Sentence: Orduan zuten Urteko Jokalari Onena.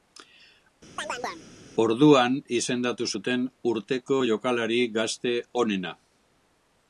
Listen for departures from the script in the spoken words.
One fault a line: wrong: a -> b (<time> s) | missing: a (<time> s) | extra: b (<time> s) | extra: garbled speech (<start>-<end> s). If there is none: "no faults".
extra: izendatu (2.6 s)
extra: Gazte (5.0 s)